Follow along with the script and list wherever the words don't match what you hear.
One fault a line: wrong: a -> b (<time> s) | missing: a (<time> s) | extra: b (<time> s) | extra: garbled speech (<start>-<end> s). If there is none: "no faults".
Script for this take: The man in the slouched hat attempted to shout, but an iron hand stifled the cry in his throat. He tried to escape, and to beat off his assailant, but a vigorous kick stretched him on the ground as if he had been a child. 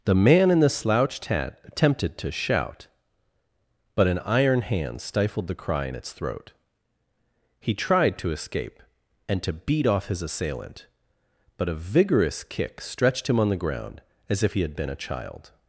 wrong: his -> its (5.9 s)